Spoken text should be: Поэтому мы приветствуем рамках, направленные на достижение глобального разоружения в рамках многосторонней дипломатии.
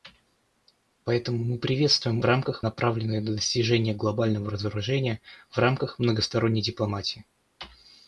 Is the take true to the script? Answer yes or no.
yes